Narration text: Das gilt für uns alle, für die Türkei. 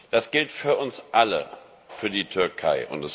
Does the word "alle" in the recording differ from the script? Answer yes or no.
no